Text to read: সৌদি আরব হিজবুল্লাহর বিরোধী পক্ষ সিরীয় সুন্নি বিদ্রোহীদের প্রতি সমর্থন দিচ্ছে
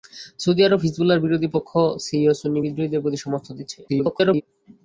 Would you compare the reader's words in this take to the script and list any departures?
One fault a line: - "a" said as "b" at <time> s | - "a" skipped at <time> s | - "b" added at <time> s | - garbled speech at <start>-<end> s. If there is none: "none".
- garbled speech at 3.9-4.4 s